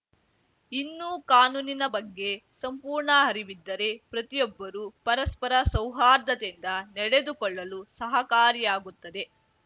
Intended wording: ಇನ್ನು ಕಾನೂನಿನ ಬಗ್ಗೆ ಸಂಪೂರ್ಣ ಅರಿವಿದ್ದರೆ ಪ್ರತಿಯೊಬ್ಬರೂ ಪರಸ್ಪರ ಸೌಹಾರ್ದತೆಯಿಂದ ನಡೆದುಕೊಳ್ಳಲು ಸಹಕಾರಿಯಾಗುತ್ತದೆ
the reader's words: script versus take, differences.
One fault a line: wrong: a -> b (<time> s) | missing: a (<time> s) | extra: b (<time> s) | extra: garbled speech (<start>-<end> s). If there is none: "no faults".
no faults